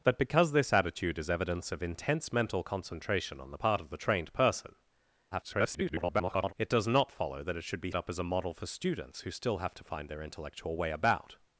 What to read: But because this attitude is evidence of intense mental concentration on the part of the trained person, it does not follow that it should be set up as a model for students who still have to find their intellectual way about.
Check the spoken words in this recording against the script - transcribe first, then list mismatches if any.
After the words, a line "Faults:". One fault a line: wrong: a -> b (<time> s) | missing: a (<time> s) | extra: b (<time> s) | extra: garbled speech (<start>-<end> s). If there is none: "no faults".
But because this attitude is evidence of intense mental concentration on the part of the trained person, [garbled] it does not follow that it should be up as a model for students who still have to find their intellectual way about.
Faults:
extra: garbled speech (5.3-6.5 s)
missing: set (7.9 s)